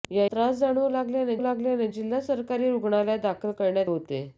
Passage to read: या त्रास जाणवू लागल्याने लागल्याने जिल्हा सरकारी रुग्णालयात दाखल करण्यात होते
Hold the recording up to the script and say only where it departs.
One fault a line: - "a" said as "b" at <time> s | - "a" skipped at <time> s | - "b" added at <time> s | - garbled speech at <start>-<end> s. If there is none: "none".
none